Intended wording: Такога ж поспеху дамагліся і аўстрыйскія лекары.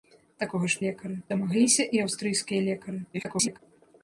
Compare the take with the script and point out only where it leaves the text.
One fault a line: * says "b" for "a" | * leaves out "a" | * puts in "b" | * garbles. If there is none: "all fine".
* says "лекары" for "поспеху"
* garbles